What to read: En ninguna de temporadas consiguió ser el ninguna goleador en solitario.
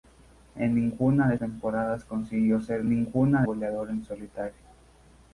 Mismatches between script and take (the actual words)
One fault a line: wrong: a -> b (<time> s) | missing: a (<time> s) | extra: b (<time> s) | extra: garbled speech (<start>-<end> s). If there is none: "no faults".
no faults